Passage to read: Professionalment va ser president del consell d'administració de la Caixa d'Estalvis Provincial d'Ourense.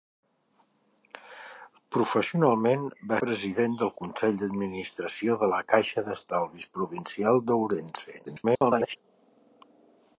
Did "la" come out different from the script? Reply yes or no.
no